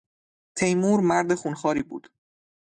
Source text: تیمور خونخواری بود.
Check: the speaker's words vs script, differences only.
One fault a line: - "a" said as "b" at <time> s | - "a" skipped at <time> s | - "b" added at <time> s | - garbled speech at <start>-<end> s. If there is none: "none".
- "مرد" added at 1.0 s